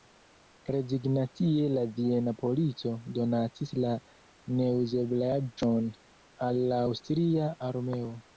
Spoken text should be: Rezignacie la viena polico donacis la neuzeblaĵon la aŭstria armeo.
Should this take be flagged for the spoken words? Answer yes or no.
yes